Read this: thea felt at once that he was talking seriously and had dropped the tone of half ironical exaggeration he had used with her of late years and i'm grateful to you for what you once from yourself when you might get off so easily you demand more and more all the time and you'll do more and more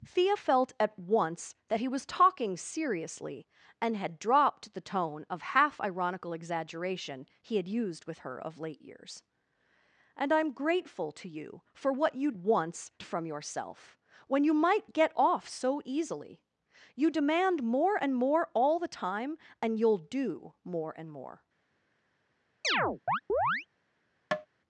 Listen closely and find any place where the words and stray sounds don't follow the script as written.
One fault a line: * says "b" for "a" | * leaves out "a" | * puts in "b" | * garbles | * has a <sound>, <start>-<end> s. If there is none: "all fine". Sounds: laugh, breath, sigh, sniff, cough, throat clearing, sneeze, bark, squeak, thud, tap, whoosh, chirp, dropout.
* has a chirp, 22.6-23.7 s
* has a tap, 24.3-24.5 s